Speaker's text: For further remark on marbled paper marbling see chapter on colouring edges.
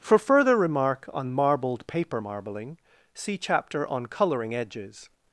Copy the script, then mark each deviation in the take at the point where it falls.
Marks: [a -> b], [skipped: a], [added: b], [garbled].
For further remark on marbled paper marbling see chapter on colouring edges.